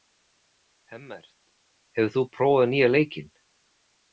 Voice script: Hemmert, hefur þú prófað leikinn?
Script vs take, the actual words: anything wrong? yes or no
yes